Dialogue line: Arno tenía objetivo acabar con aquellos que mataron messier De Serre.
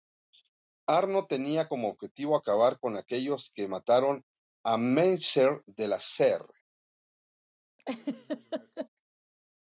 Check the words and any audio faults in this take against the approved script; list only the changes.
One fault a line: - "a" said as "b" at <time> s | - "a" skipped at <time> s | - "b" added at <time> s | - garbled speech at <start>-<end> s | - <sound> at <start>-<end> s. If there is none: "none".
- "como" added at 1.7 s
- "a" added at 4.6 s
- "La" added at 5.9 s
- laugh at 7.8-8.9 s